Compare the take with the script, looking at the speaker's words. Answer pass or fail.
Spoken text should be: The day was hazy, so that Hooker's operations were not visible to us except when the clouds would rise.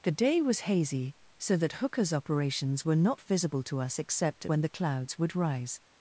pass